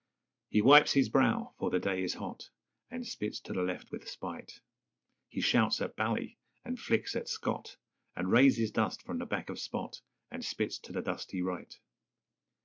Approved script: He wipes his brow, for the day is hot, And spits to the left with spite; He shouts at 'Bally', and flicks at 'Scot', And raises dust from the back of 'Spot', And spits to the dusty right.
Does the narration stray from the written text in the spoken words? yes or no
no